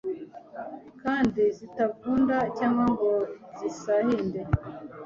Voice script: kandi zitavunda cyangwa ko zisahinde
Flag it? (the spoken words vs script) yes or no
yes